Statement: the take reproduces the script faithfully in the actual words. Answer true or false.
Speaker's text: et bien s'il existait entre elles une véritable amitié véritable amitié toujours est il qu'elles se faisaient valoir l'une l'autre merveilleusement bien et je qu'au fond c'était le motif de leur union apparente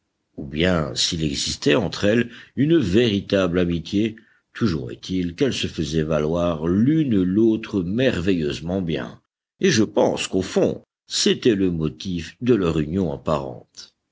false